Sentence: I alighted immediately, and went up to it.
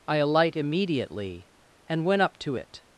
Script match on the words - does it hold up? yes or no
no